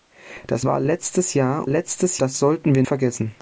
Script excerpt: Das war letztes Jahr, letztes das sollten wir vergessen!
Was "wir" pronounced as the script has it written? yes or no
yes